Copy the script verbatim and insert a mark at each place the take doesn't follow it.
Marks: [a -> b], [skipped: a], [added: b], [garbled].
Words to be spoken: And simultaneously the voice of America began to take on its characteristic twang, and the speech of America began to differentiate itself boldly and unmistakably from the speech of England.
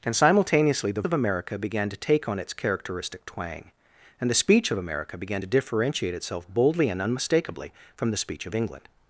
And simultaneously the [skipped: voice] of America began to take on its characteristic twang, and the speech of America began to differentiate itself boldly and unmistakably from the speech of England.